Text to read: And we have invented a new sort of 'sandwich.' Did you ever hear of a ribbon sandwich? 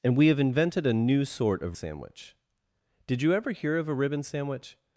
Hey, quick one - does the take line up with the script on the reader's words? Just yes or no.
yes